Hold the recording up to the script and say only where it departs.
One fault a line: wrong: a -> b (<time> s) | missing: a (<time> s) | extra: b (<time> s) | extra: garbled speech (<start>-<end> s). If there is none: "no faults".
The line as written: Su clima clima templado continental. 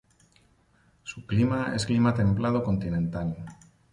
extra: es (1.8 s)